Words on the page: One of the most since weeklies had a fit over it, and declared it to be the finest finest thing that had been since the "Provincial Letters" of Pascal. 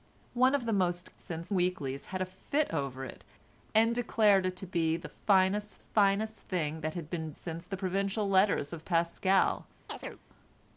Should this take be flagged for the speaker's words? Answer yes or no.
no